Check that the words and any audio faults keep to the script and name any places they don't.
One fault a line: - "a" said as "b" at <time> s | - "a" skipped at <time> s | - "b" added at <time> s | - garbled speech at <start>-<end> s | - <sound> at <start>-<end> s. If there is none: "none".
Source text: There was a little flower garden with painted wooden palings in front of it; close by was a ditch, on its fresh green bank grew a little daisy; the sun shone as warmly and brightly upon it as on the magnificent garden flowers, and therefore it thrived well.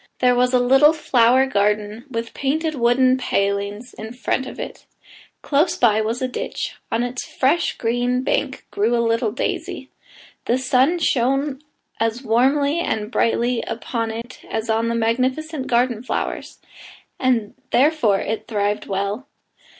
- dropout at 14.2-14.2 s